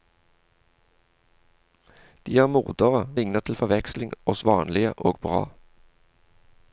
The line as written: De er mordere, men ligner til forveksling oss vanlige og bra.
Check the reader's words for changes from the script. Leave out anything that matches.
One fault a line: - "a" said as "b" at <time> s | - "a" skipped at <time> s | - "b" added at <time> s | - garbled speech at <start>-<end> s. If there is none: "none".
- "men" skipped at 3.0 s